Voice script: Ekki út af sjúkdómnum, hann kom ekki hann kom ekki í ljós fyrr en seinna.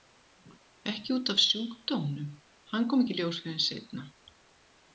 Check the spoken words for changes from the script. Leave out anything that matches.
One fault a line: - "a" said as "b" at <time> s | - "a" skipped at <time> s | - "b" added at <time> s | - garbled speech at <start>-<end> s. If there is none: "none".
- "hann kom ekki" skipped at 3.1 s